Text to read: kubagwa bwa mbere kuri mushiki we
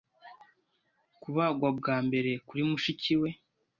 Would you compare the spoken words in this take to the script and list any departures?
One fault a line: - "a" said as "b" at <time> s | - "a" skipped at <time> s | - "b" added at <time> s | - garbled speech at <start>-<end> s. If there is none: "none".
none